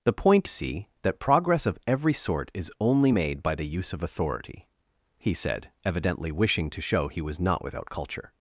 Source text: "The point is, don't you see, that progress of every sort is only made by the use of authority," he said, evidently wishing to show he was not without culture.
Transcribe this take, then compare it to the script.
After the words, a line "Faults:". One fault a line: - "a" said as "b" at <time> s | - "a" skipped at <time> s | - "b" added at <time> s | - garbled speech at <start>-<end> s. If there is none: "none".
"The point see, that progress of every sort is only made by the use of authority," he said, evidently wishing to show he was not without culture.
Faults:
- "is don't you" skipped at 0.5 s